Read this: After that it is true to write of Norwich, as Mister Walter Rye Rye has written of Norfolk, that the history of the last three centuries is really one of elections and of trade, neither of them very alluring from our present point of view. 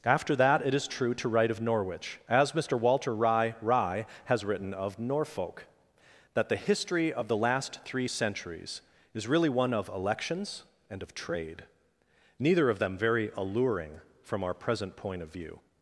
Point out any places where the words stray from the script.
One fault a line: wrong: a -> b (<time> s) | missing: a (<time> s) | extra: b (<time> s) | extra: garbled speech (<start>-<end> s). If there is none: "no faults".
no faults